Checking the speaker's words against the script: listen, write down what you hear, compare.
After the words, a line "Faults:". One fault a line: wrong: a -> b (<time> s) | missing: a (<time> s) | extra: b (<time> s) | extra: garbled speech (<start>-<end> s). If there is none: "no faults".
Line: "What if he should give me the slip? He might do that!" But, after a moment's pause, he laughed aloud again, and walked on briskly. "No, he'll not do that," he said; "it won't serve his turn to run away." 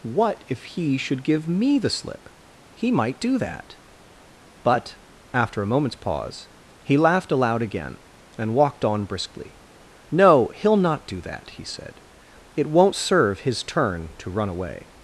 "What if he should give me the slip? He might do that!" But, after a moment's pause, he laughed aloud again, and walked on briskly. "No, he'll not do that," he said; "it won't serve his turn to run away."
Faults:
no faults